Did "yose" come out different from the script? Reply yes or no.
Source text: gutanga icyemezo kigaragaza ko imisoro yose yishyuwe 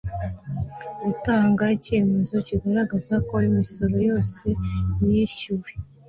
no